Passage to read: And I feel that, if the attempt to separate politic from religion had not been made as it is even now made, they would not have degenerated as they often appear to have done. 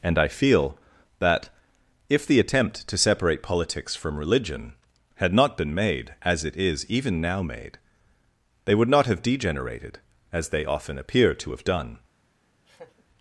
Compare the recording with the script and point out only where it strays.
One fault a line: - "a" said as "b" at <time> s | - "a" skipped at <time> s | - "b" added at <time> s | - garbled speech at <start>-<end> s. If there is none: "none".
- "politic" said as "politics" at 3.4 s